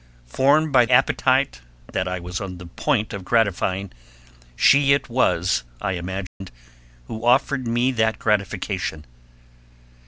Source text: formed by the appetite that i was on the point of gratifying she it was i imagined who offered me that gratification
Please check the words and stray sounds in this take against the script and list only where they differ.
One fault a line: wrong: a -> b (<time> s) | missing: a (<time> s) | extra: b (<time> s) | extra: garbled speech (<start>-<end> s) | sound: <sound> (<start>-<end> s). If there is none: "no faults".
missing: the (0.9 s)
sound: dropout (6.3-6.4 s)